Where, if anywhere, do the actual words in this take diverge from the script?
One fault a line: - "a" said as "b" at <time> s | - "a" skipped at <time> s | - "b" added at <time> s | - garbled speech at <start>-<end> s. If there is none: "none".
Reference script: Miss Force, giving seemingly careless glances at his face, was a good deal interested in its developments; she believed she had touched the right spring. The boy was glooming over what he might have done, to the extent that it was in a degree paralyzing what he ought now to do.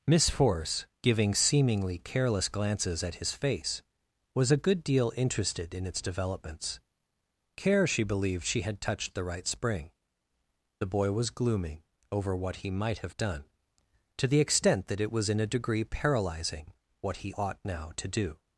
- "care" added at 7.5 s